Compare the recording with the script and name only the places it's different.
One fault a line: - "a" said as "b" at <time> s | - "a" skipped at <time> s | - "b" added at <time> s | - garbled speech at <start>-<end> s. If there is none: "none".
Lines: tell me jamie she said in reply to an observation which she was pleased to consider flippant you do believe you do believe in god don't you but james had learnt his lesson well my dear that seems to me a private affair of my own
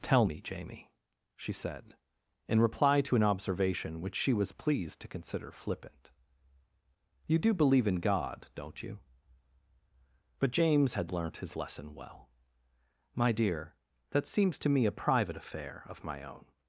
- "you do believe" skipped at 7.9 s